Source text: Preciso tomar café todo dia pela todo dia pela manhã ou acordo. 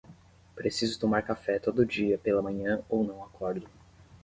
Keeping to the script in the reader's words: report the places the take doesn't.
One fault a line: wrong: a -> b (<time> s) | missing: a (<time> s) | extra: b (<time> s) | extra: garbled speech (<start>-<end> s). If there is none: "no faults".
missing: todo dia pela (2.4 s)
extra: não (3.0 s)